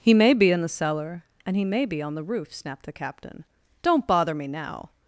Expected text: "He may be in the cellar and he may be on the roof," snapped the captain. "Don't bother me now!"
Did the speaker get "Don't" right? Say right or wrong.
right